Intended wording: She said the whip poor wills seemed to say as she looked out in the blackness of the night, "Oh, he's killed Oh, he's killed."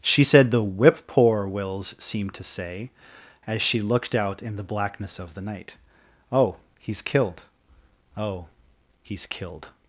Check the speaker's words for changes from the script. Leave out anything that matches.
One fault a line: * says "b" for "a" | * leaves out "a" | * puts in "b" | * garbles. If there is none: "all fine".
all fine